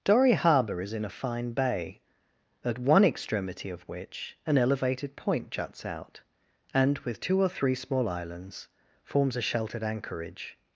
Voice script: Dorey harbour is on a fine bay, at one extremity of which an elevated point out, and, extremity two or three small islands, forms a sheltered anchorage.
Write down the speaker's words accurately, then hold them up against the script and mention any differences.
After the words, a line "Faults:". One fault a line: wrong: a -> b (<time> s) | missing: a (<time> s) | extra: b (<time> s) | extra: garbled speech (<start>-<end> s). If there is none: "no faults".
Dorey harbour is in a fine bay, at one extremity of which an elevated point juts out, and, with two or three small islands, forms a sheltered anchorage.
Faults:
wrong: on -> in (0.9 s)
extra: juts (5.5 s)
wrong: extremity -> with (7.0 s)